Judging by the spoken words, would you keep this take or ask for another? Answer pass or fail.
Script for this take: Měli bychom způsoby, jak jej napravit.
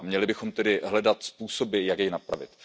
fail